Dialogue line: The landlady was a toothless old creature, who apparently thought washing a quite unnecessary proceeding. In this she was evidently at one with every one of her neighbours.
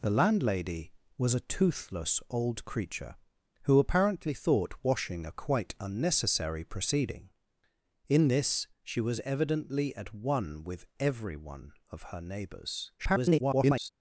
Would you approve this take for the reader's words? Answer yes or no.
no